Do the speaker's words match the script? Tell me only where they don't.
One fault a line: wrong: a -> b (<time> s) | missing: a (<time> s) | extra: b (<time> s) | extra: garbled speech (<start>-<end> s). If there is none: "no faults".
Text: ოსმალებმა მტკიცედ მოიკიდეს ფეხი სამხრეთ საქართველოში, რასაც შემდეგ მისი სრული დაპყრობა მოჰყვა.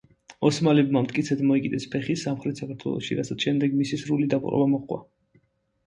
no faults